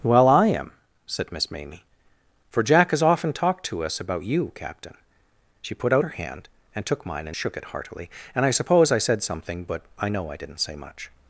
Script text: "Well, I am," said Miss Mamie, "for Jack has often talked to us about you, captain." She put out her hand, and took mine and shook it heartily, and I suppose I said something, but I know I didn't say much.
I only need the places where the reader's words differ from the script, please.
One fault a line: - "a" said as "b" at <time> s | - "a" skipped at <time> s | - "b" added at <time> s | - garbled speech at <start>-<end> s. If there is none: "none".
none